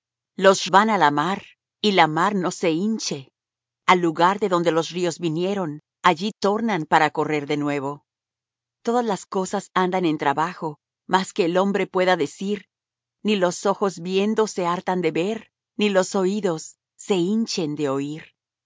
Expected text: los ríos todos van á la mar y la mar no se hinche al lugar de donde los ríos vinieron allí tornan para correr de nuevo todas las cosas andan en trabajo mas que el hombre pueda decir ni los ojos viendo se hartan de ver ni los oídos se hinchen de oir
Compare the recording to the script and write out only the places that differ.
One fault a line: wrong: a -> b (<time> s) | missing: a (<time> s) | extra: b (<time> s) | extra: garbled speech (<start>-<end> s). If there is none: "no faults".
missing: ríos todos (0.6 s)